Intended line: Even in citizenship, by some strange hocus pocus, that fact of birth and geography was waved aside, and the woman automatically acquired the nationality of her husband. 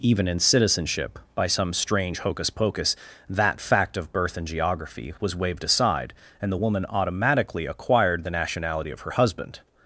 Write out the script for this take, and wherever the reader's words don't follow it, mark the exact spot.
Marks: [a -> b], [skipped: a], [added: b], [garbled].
Even in citizenship, by some strange hocus pocus, that fact of birth and geography was waved aside, and the woman automatically acquired the nationality of her husband.